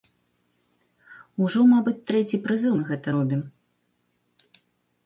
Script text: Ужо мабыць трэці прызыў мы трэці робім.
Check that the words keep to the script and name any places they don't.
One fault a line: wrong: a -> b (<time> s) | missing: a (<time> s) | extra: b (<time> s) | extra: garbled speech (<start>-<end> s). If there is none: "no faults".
wrong: трэці -> гэта (2.9 s)